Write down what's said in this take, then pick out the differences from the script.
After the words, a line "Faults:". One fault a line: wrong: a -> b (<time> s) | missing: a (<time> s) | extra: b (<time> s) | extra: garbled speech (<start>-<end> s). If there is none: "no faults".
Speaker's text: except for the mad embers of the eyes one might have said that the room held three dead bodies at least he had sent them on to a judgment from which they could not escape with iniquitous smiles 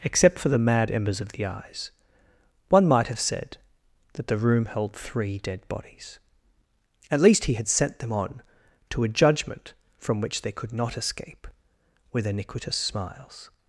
except for the mad embers of the eyes one might have said that the room held three dead bodies at least he had sent them on to a judgment from which they could not escape with iniquitous smiles
Faults:
no faults